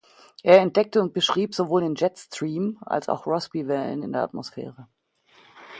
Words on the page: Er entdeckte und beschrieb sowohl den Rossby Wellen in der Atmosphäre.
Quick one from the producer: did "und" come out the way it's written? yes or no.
yes